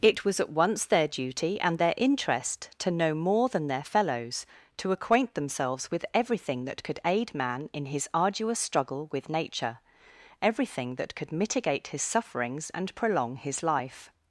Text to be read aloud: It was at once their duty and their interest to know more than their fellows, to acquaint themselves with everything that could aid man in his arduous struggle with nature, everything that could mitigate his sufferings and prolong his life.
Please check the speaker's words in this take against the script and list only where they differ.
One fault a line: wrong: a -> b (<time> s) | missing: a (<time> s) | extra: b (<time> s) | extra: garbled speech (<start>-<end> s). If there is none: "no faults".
no faults